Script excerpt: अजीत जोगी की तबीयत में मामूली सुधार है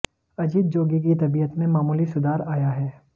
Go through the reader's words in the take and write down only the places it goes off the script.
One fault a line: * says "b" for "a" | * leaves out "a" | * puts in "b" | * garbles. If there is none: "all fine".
* puts in "आया"